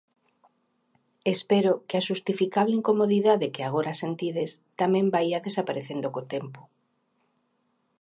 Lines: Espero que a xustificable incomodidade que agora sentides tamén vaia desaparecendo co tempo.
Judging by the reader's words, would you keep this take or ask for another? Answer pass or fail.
pass